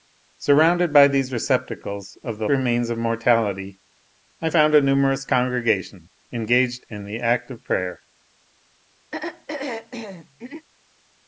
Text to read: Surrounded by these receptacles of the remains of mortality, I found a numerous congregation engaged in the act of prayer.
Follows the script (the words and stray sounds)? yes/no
no